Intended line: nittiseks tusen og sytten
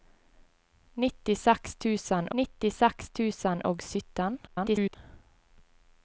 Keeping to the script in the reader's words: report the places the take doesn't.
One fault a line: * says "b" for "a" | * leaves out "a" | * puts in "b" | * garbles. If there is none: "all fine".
* puts in "nittiseks tusen"
* garbles